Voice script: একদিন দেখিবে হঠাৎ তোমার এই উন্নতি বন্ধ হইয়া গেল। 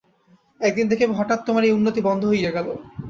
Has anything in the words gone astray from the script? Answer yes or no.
no